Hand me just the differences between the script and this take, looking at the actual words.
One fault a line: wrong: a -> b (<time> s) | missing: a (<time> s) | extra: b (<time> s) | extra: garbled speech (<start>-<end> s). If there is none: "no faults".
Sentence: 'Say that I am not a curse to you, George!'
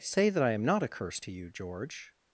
no faults